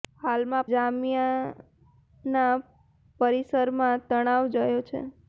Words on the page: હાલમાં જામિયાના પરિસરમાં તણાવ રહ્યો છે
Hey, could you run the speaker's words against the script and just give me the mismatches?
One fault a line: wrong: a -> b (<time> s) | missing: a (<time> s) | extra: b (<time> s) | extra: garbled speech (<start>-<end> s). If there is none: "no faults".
no faults